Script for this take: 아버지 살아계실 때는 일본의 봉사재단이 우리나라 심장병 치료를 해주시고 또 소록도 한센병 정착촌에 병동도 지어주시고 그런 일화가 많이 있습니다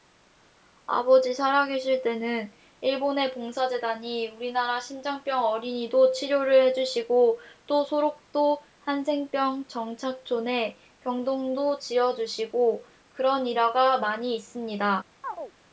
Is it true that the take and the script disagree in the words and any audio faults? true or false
true